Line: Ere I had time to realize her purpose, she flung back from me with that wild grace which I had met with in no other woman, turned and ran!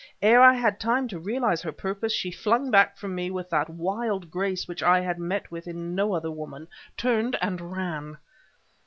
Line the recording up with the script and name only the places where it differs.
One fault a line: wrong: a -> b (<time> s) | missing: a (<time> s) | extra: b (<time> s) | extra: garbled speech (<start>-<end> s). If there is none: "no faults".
no faults